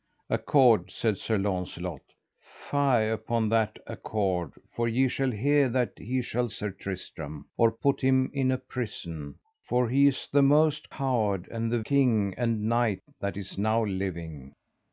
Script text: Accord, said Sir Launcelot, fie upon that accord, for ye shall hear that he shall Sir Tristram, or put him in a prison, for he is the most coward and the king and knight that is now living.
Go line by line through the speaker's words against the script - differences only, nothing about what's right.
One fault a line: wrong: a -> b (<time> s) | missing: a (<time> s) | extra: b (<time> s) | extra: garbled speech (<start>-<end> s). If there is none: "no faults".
no faults